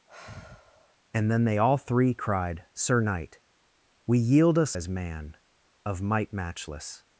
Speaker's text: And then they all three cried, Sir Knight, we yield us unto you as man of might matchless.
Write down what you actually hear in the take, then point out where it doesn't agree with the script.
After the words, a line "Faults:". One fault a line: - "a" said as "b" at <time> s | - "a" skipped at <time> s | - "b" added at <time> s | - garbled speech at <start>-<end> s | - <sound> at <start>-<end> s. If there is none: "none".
And then they all three cried, Sir Knight, we yield us as man of might matchless.
Faults:
- sigh at 0.1-1.0 s
- "unto you" skipped at 4.8 s